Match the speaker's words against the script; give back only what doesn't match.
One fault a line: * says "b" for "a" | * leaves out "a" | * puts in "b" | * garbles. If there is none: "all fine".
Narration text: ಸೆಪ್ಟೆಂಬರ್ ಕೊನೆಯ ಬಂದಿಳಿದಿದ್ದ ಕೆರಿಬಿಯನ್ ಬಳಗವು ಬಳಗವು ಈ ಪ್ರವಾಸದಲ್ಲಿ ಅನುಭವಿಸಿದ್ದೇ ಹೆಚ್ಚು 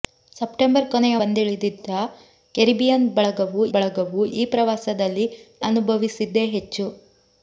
all fine